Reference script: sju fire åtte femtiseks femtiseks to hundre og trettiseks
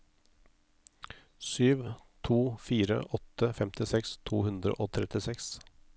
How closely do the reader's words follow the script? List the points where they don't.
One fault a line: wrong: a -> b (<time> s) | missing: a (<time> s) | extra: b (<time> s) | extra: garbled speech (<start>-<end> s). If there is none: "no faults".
extra: to (2.2 s)
missing: femtiseks (4.2 s)